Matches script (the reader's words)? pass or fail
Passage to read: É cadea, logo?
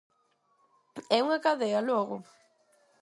fail